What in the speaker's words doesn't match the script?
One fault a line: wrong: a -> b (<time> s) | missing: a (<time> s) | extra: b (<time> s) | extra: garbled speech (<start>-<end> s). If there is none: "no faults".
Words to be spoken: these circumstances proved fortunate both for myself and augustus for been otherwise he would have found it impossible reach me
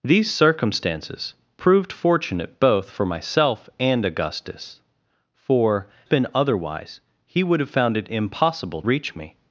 no faults